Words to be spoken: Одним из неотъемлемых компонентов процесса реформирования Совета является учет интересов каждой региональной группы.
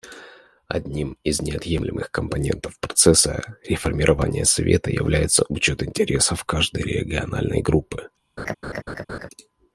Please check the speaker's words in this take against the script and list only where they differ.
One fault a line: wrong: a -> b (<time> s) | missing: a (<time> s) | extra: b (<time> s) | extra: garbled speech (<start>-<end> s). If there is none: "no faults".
no faults